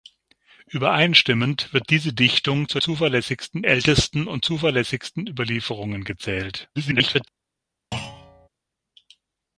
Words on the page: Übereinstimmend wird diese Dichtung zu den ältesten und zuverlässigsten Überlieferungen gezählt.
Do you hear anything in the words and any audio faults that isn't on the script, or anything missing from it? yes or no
yes